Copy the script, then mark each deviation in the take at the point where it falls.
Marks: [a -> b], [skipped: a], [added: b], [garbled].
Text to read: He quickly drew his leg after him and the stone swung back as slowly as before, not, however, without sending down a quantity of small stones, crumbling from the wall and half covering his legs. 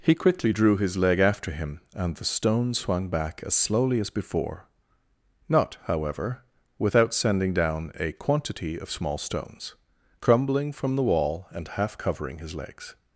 He quickly drew his leg after him and the stone swung back as slowly as before, not, however, without sending down a quantity of small stones, crumbling from the wall and half covering his legs.